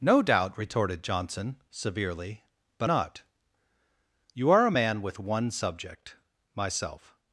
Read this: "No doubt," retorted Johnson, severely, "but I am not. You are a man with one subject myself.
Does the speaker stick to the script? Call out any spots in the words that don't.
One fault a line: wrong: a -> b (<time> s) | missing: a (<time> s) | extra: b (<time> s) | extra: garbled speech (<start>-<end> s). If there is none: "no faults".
missing: I am (2.9 s)